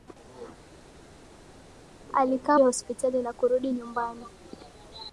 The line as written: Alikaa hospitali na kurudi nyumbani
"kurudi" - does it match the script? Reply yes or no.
yes